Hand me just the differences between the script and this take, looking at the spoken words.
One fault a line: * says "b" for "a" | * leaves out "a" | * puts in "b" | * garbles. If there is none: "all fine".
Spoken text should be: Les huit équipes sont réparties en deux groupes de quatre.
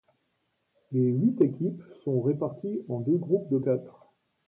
all fine